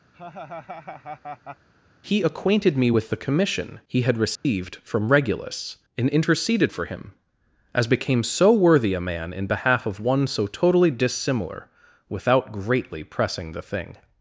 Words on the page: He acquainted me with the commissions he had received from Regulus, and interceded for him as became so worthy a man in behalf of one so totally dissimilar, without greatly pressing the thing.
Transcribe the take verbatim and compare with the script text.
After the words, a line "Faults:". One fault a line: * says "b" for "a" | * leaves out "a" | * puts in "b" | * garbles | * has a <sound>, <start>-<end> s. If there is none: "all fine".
He acquainted me with the commission he had received from Regulus, and interceded for him as became so worthy a man in behalf of one so totally dissimilar, without greatly pressing the thing.
Faults:
* has a laugh, 0.1-1.7 s
* says "commission" for "commissions"
* has a dropout, 4.4-4.4 s